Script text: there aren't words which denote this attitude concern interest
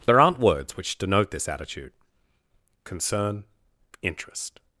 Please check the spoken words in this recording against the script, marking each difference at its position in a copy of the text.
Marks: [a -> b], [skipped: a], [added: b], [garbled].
there aren't words which denote this attitude concern interest